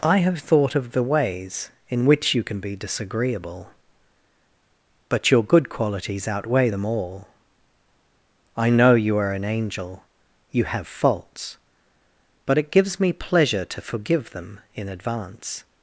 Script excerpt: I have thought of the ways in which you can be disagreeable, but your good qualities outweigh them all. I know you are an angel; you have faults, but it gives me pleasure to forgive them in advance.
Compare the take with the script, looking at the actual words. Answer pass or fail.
pass